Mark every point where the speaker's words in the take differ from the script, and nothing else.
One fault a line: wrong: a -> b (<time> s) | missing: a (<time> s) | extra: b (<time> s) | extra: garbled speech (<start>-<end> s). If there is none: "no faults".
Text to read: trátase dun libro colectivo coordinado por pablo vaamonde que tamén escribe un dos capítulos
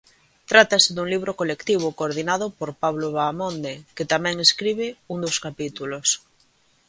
no faults